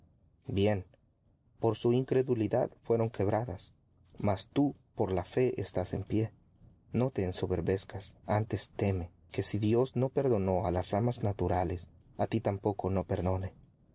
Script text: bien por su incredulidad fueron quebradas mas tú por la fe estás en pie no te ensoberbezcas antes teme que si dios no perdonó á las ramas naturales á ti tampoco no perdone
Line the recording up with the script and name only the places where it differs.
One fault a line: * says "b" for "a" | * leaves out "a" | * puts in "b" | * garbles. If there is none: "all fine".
all fine